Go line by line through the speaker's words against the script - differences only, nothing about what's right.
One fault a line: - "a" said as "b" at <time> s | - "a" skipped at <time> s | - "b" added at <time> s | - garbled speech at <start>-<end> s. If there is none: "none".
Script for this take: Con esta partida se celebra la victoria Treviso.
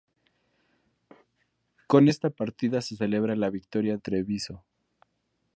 none